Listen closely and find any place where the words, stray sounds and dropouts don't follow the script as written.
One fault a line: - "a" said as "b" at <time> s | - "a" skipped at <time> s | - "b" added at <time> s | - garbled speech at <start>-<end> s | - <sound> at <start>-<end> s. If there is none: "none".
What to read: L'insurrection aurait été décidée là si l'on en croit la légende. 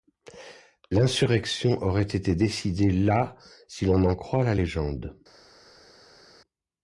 none